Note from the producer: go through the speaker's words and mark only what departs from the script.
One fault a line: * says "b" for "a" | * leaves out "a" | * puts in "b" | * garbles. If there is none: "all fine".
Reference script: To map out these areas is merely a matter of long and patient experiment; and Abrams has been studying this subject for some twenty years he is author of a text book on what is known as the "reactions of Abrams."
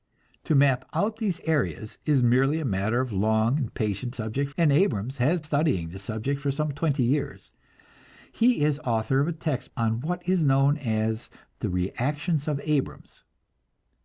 * says "subject" for "experiment"
* leaves out "been"
* leaves out "book"